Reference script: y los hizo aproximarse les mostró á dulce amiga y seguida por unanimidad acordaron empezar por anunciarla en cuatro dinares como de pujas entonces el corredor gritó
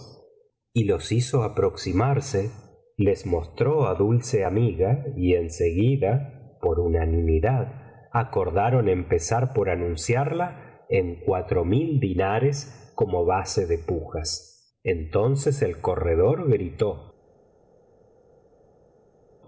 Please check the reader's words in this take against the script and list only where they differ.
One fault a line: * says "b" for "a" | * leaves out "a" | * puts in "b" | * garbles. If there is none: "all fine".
* puts in "en"
* puts in "mil"
* puts in "base"